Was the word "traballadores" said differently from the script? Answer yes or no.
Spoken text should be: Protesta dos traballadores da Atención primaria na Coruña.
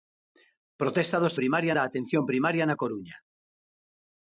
yes